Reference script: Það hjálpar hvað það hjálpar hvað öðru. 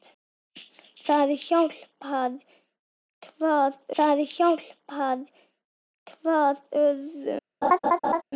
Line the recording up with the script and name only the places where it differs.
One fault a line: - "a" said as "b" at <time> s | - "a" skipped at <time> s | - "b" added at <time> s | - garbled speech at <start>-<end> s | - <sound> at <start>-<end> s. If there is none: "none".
- laugh at 7.6-8.2 s